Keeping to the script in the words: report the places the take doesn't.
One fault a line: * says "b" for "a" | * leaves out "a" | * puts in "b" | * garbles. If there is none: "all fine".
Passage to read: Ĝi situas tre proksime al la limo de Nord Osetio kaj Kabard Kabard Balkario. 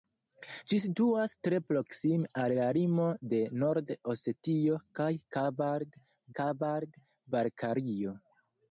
all fine